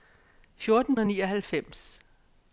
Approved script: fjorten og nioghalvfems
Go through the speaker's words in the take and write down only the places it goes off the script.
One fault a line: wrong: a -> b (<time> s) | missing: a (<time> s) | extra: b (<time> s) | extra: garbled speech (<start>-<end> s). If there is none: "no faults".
no faults